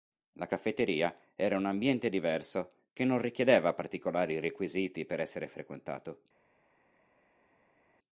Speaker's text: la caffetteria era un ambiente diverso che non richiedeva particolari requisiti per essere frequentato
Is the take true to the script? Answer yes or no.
yes